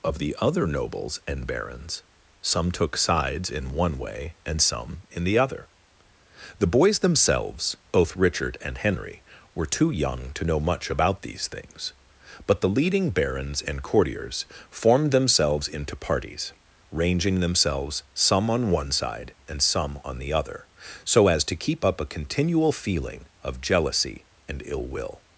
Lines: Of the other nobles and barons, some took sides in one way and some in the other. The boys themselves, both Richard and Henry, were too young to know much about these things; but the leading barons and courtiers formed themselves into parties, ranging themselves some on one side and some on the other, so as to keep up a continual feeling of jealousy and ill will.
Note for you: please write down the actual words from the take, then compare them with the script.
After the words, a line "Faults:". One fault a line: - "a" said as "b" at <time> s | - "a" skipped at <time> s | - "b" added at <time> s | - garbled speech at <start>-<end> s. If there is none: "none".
Of the other nobles and barons, some took sides in one way and some in the other. The boys themselves, both Richard and Henry, were too young to know much about these things; but the leading barons and courtiers formed themselves into parties, ranging themselves some on one side and some on the other, so as to keep up a continual feeling of jealousy and ill will.
Faults:
none